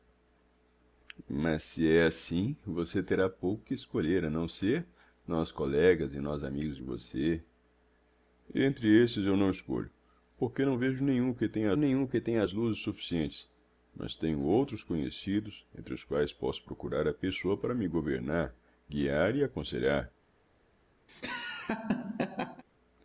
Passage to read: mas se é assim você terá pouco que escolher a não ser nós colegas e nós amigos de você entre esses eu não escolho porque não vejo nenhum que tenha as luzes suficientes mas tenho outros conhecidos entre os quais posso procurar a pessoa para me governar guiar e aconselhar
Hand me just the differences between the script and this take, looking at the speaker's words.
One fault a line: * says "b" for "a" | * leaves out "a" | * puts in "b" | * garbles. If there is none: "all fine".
* puts in "nenhum que tenha"